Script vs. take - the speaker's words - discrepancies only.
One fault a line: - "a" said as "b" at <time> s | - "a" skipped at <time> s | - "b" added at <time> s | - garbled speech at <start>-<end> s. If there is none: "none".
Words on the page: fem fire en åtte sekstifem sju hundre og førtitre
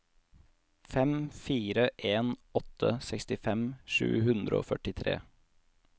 none